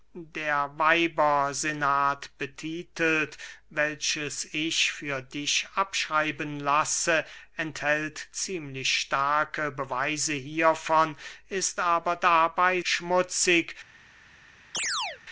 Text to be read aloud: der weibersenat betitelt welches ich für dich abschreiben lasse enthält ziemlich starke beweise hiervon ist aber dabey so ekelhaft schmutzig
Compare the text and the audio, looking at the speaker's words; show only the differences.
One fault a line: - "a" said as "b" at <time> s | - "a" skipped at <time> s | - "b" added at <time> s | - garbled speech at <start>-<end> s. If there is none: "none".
- "so ekelhaft" skipped at 12.8 s